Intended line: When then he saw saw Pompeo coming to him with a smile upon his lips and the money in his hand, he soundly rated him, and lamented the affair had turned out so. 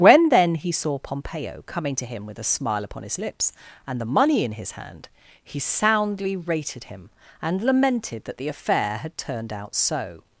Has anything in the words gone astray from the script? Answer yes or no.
yes